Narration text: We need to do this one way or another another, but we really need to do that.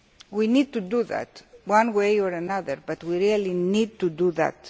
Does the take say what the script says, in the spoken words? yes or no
no